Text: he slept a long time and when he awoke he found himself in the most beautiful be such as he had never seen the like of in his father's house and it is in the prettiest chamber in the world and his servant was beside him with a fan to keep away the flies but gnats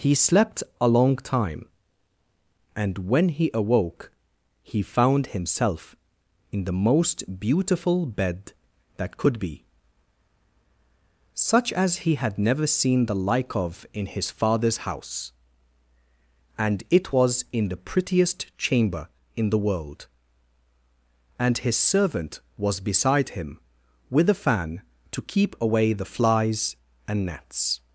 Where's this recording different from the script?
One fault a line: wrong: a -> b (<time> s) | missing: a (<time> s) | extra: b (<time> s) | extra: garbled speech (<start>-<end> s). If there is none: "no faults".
extra: bed that could (8.1 s)
wrong: is -> was (17.1 s)
wrong: but -> and (27.1 s)